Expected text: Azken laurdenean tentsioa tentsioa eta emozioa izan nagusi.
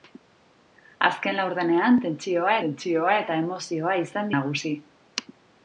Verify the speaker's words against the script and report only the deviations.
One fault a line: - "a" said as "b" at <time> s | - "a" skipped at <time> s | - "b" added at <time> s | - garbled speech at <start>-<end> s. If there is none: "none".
none